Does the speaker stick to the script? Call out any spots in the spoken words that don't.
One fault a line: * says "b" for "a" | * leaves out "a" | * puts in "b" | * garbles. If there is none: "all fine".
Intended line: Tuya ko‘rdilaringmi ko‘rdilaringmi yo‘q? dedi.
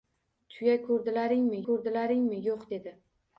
all fine